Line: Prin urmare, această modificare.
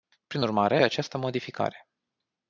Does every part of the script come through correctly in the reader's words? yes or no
yes